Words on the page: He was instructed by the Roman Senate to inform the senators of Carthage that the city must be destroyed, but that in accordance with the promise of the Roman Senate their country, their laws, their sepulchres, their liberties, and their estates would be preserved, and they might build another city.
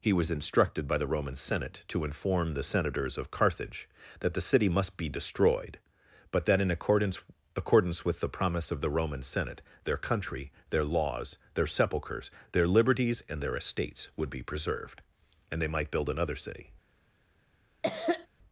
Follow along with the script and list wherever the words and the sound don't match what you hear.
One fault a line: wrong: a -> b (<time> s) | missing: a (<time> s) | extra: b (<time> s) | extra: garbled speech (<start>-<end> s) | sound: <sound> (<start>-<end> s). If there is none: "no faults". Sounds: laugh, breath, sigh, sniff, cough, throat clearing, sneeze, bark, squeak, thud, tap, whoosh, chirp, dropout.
extra: accordance (7.5 s)
sound: cough (17.8-18.3 s)